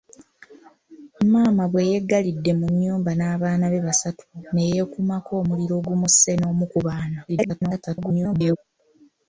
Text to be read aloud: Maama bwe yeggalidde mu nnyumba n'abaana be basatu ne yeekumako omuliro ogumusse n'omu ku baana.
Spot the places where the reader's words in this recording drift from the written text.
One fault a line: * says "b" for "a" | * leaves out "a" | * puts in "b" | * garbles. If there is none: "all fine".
* garbles